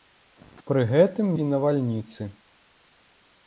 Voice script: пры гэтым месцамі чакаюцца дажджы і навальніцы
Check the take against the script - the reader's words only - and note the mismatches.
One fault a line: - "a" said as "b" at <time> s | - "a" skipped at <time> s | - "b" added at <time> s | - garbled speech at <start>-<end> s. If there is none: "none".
- "месцамі чакаюцца дажджы" skipped at 1.3 s